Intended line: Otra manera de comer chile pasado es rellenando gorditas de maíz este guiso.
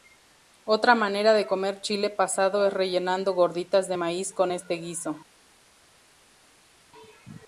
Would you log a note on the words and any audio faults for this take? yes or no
yes